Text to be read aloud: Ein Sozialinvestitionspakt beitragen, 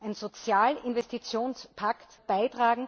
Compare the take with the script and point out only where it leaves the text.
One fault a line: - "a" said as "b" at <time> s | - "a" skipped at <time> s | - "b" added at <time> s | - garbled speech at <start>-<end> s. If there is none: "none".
none